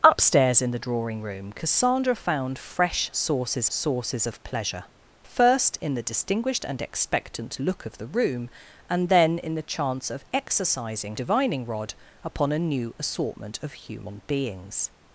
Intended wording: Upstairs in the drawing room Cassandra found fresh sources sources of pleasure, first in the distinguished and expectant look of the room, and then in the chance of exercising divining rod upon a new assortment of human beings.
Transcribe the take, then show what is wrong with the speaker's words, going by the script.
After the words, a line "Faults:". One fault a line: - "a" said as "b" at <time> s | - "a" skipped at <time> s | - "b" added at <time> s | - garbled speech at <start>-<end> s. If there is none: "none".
Upstairs in the drawing room Cassandra found fresh sources sources of pleasure, first in the distinguished and expectant look of the room, and then in the chance of exercising divining rod upon a new assortment of human beings.
Faults:
none